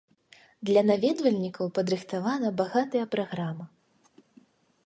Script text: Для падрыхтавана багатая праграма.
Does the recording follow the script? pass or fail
fail